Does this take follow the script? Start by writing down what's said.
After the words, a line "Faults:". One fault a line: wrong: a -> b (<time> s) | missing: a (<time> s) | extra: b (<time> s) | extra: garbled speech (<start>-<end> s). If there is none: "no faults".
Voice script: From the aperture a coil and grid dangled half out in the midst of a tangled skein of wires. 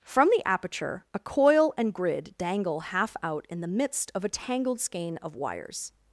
From the aperture a coil and grid dangle half out in the midst of a tangled skein of wires.
Faults:
wrong: dangled -> dangle (2.4 s)